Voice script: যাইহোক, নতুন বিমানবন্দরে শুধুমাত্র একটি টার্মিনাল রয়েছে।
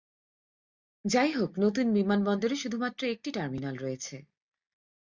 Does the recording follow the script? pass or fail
pass